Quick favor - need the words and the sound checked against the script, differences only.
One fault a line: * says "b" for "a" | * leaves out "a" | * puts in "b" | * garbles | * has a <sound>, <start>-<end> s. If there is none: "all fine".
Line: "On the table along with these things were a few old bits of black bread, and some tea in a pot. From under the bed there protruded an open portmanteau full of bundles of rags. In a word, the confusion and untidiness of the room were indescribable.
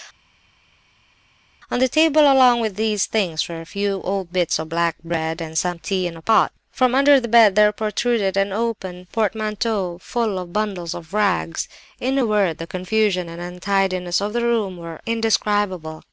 all fine